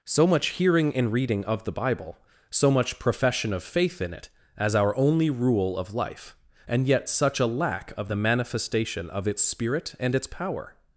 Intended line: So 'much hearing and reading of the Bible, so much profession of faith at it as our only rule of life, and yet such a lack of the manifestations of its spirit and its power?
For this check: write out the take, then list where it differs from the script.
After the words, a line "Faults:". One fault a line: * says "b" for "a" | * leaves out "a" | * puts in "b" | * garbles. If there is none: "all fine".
So 'much hearing and reading of the Bible, so much profession of faith in it as our only rule of life, and yet such a lack of the manifestation of its spirit and its power?
Faults:
* says "in" for "at"
* says "manifestation" for "manifestations"